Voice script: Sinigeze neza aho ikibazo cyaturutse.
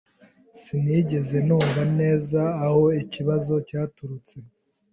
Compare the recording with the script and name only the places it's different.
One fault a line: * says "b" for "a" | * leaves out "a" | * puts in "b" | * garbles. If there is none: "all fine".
* puts in "numva"